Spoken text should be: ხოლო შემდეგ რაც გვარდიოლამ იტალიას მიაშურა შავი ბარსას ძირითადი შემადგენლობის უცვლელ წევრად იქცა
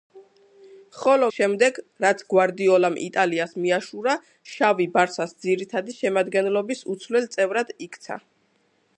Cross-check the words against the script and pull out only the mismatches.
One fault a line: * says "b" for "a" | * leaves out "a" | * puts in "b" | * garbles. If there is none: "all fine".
all fine